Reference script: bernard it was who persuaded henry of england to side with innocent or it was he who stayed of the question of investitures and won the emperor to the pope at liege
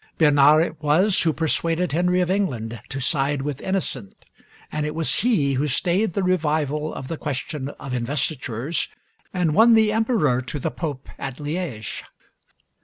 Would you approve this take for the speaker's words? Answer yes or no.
no